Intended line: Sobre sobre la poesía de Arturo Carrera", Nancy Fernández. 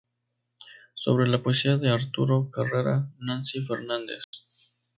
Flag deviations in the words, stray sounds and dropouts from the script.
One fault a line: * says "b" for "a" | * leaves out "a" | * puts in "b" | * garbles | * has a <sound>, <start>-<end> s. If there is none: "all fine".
* leaves out "sobre"
* has a dropout, 4.2-4.3 s